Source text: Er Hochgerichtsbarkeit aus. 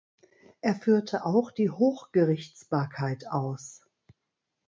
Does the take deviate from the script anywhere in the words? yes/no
yes